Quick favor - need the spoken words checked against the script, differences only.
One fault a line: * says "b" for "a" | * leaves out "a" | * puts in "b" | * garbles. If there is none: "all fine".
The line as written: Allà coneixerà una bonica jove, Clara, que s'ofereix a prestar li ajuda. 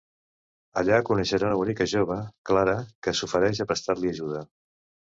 all fine